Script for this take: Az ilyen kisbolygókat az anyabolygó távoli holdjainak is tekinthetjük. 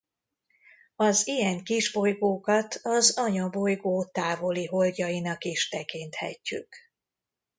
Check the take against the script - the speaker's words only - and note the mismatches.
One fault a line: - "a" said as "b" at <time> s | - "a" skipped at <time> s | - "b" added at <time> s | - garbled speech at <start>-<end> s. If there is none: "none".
none